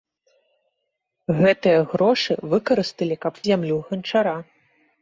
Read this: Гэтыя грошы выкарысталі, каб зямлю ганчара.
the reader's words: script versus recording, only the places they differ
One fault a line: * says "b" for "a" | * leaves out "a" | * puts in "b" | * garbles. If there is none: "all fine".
all fine